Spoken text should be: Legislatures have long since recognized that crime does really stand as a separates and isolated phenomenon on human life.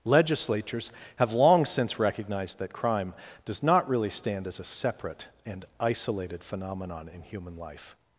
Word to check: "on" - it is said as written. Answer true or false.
false